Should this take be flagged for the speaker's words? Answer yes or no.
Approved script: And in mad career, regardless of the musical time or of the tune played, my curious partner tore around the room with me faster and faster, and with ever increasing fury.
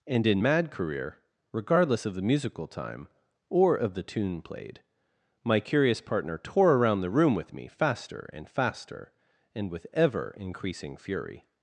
no